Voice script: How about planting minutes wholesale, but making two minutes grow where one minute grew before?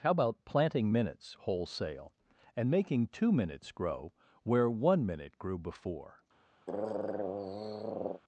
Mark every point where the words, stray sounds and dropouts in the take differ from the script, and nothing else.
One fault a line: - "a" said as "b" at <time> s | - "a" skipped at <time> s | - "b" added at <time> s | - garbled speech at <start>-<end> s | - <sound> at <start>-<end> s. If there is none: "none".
- "but" said as "and" at 2.5 s
- throat clearing at 6.7-8.2 s